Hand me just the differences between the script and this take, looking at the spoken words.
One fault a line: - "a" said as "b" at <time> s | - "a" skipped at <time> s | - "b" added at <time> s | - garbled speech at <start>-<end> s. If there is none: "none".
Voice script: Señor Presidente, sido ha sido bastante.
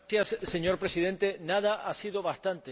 - "sido" said as "nada" at 1.4 s